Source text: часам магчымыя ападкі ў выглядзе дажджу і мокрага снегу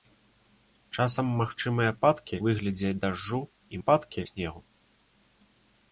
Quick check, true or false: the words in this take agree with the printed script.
false